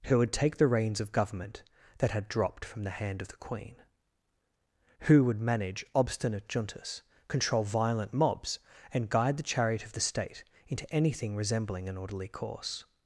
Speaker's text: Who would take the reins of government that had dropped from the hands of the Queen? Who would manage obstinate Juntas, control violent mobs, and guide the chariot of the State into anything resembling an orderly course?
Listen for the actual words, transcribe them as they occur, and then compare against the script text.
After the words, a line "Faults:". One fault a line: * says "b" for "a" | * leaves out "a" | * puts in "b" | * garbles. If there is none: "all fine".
Who would take the reins of government that had dropped from the hand of the Queen? Who would manage obstinate Juntas, control violent mobs, and guide the chariot of the State into anything resembling an orderly course?
Faults:
* says "hand" for "hands"